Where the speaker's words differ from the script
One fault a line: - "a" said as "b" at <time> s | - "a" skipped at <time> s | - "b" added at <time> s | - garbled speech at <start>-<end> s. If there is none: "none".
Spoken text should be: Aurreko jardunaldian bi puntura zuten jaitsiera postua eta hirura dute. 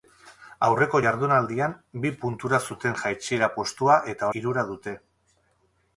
none